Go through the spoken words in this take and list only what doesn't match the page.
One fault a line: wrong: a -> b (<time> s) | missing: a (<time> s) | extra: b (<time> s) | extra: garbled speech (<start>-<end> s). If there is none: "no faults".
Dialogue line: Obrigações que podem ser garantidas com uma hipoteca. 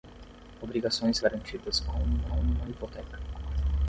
missing: que podem ser (1.2 s)
extra: uma (2.3 s)